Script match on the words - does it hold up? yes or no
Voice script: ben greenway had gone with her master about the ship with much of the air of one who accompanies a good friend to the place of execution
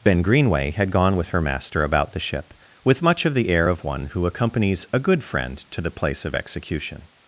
yes